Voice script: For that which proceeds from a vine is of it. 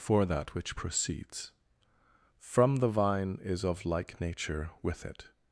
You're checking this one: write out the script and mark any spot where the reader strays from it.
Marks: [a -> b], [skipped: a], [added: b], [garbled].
For that which proceeds from [a -> the] vine is of [added: like nature with] it.